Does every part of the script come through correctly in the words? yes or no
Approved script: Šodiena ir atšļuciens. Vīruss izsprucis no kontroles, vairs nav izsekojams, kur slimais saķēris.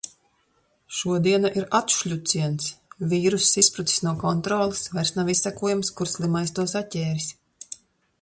no